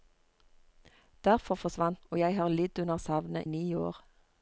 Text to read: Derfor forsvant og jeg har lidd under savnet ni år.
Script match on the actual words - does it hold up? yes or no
yes